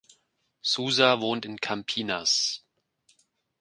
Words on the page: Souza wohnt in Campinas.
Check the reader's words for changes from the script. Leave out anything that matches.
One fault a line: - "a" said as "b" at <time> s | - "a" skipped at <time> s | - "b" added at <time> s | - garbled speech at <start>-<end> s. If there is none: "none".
none